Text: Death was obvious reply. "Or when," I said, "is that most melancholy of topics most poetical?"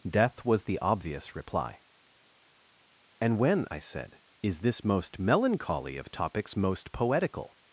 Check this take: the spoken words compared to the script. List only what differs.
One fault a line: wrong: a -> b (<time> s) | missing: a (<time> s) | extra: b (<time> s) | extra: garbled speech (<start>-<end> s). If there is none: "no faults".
extra: the (0.7 s)
wrong: Or -> And (3.2 s)
wrong: that -> this (4.6 s)